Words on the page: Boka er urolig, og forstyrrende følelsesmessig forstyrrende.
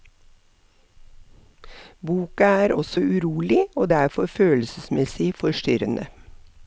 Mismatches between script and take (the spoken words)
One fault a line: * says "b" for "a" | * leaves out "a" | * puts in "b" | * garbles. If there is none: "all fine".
* puts in "også"
* says "derfor" for "forstyrrende"